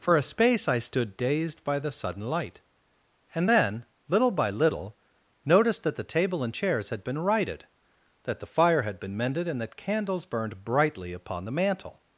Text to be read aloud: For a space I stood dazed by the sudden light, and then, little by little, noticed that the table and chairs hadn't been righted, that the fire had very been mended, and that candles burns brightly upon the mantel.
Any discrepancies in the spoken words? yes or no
yes